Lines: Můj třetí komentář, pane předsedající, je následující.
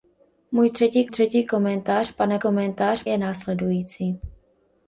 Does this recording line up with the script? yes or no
no